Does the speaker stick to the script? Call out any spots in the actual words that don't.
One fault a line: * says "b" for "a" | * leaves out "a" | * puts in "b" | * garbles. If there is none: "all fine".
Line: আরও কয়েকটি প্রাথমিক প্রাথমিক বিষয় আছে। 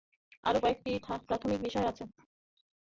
* leaves out "প্রাথমিক"